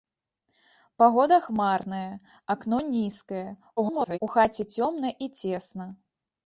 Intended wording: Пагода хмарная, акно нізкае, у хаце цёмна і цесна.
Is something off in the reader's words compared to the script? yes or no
yes